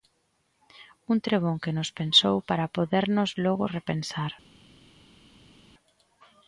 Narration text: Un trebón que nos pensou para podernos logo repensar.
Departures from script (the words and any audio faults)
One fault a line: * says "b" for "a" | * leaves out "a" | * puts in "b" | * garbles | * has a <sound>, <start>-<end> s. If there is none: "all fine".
all fine